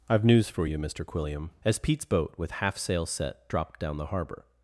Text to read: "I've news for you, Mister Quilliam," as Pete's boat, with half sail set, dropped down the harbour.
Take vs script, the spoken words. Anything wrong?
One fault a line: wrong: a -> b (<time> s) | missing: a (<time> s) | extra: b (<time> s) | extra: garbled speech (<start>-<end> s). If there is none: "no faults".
no faults